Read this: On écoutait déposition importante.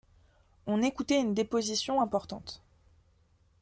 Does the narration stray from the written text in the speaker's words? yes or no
yes